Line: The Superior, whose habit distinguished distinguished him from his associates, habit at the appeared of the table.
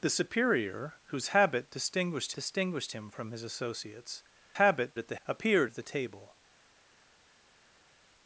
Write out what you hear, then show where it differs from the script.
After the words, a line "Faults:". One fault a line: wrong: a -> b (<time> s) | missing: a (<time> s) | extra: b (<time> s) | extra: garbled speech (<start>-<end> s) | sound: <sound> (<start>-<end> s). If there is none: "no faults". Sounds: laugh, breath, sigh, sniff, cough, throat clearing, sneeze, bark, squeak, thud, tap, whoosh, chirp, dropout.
The Superior, whose habit distinguished distinguished him from his associates, habit at the appeared of the table.
Faults:
no faults